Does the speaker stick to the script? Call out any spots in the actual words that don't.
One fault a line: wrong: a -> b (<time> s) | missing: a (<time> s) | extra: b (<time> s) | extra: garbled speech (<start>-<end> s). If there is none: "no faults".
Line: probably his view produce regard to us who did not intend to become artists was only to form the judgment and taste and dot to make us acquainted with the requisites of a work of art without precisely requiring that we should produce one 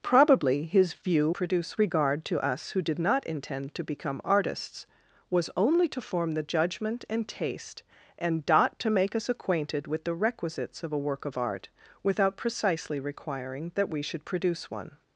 no faults